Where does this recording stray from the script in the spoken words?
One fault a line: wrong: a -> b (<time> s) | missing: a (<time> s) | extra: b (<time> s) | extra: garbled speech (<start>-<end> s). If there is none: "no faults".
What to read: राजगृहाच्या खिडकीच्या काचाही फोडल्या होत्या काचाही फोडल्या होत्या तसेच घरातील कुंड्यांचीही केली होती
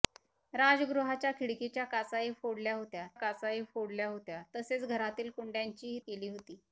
no faults